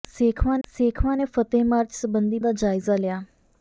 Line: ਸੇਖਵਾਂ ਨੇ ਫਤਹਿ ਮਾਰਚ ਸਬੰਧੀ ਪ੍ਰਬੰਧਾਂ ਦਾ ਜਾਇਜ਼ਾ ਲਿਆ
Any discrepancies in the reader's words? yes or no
yes